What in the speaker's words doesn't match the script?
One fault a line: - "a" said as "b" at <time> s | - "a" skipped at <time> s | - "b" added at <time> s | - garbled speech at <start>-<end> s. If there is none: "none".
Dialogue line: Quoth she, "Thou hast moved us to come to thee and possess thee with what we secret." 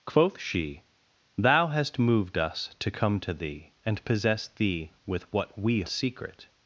none